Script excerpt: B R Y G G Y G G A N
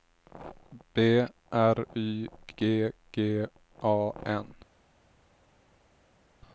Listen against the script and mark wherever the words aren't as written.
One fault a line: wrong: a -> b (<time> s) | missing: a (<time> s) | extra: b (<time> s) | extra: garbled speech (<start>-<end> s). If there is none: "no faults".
missing: Y G G (3.5 s)